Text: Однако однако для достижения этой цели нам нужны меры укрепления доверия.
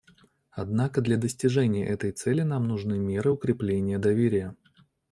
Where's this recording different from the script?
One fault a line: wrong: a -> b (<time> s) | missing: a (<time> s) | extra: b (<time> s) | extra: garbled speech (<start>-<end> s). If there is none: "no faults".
missing: однако (1.0 s)